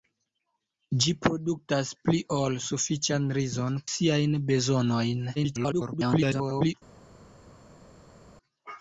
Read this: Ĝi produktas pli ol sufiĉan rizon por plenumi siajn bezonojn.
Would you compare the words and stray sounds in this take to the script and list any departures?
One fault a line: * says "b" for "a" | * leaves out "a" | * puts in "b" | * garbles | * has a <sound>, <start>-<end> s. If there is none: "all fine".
* leaves out "por plenumi"
* garbles